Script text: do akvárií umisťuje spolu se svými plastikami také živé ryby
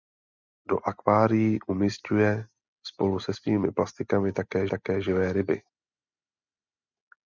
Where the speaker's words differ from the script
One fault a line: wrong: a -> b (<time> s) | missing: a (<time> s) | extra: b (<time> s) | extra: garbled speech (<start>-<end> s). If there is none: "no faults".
extra: také (4.7 s)